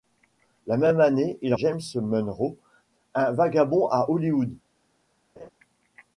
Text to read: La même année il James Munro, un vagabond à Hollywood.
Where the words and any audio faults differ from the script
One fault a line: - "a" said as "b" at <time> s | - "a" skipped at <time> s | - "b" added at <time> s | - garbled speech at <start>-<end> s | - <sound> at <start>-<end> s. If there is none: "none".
- laugh at 5.4-5.5 s